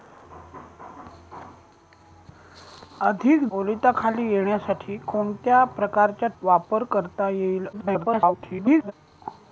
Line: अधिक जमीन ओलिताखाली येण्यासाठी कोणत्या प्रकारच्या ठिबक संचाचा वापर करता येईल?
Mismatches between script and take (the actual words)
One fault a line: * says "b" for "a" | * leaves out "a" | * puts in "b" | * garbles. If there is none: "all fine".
* leaves out "जमीन"
* leaves out "ठिबक संचाचा"
* garbles